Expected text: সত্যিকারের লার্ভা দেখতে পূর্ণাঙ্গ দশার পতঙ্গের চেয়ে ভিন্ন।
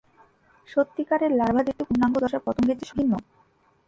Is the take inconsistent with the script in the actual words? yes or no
no